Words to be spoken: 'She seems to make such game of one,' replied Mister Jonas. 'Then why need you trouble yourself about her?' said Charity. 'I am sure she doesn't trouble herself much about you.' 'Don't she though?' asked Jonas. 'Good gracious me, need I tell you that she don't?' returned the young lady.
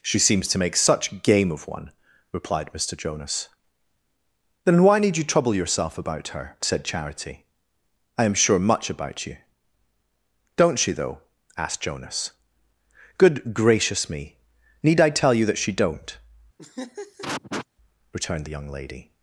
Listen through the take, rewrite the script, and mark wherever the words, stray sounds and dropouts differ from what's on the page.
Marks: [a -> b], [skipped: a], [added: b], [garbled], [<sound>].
'She seems to make such game of one,' replied Mister Jonas. 'Then why need you trouble yourself about her?' said Charity. 'I am sure [skipped: she doesn't trouble herself] much about you.' 'Don't she though?' asked Jonas. 'Good gracious me, need I tell you that she don't?' [laugh] returned the young lady.